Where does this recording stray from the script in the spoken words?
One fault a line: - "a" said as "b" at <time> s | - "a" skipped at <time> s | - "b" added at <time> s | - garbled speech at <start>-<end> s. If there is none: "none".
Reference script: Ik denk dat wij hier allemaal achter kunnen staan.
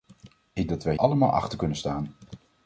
- "denk" skipped at 0.7 s
- "hier" skipped at 1.0 s